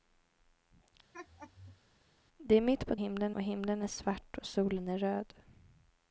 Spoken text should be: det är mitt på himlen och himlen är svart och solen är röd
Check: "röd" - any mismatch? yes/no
no